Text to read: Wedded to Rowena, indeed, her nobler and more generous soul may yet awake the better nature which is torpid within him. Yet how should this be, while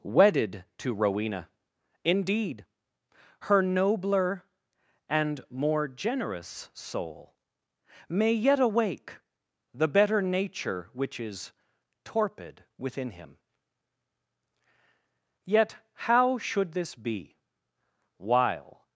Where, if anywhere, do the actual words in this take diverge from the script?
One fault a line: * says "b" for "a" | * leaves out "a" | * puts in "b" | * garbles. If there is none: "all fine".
all fine